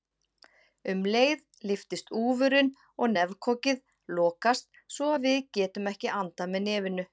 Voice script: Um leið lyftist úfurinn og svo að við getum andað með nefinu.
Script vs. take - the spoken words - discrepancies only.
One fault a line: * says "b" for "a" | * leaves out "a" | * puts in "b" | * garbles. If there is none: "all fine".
* puts in "nefkokið lokast"
* puts in "ekki"